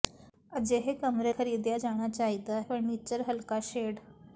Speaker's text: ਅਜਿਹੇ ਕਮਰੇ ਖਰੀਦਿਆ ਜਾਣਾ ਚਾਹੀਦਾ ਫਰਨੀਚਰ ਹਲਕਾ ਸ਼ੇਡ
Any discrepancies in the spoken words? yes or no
no